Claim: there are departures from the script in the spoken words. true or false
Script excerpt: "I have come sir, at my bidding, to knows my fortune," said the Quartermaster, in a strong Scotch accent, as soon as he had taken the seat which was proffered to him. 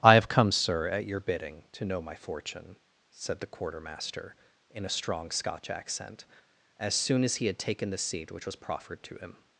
true